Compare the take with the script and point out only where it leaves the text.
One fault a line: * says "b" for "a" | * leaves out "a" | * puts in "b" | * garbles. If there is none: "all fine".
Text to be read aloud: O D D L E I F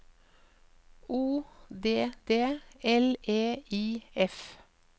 all fine